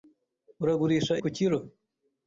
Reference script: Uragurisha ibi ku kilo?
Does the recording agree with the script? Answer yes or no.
no